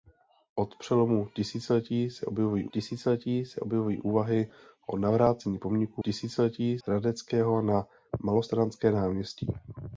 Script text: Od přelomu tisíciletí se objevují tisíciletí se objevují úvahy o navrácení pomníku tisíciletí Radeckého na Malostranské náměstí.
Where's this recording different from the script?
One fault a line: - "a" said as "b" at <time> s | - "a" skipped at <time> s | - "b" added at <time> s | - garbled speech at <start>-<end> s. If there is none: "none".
none